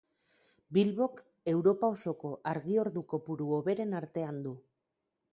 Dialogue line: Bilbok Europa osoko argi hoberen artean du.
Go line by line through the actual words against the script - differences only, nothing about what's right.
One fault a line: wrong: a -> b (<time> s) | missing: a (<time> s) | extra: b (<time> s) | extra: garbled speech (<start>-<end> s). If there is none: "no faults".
extra: ordu kopuru (2.8 s)